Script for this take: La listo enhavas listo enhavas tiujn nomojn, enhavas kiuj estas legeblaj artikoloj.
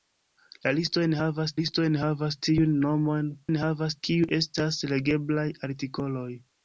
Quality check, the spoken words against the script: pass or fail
pass